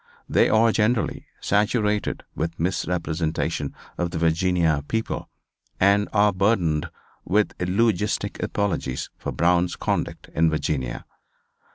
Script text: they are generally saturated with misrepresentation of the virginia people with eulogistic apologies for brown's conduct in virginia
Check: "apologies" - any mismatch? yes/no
no